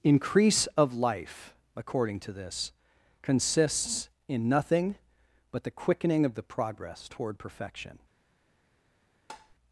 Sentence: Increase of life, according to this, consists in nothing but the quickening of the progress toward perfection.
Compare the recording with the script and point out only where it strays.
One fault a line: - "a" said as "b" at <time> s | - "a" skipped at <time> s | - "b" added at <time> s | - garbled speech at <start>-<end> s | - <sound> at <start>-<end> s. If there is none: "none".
- tap at 9.3-9.5 s